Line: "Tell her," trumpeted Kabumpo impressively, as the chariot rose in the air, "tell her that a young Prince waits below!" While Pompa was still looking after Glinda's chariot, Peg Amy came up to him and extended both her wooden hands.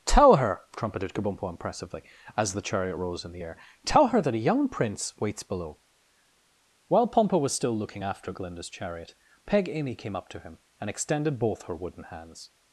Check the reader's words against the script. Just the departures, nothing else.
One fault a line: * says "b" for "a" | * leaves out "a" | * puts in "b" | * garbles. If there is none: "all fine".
all fine